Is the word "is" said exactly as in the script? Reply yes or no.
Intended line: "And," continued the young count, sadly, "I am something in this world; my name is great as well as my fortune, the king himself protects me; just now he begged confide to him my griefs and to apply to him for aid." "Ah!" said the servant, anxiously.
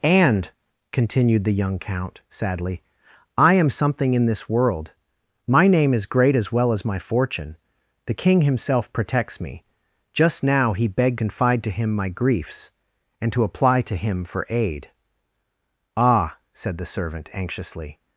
yes